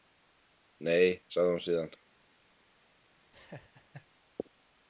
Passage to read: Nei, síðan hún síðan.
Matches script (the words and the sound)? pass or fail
fail